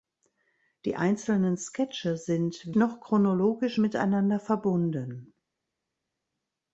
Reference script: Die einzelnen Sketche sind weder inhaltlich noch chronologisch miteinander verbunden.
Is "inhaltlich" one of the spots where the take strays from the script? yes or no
yes